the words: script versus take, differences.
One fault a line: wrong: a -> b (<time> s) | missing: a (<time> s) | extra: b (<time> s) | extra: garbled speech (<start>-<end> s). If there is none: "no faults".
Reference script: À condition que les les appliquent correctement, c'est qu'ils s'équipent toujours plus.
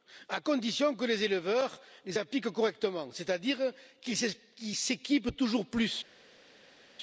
extra: éleveurs (1.2 s)
extra: à dire (3.3 s)